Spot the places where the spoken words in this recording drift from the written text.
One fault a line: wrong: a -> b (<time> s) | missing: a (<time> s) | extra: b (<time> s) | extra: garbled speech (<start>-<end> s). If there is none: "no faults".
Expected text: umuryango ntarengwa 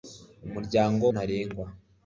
no faults